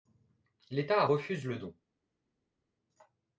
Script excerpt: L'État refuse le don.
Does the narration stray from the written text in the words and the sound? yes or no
no